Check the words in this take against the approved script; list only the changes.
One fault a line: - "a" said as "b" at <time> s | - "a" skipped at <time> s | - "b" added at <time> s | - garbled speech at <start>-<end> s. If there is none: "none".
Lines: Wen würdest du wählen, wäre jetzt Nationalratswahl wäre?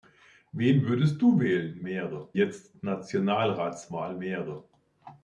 none